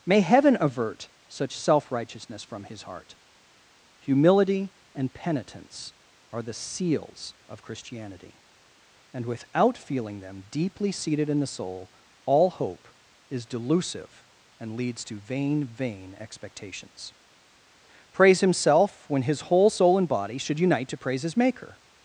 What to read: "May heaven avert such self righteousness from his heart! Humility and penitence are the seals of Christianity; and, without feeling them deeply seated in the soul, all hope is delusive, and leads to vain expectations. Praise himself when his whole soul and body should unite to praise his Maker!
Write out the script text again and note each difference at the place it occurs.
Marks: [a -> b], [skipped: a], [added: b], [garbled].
"May heaven avert such self righteousness from his heart! Humility and penitence are the seals of Christianity; and, without feeling them deeply seated in the soul, all hope is delusive, and leads to vain [added: vain] expectations. Praise himself when his whole soul and body should unite to praise his Maker!